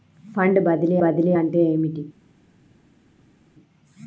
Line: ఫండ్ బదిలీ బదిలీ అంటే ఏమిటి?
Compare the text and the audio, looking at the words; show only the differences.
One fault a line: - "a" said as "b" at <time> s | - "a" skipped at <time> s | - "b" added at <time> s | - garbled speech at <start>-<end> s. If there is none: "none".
none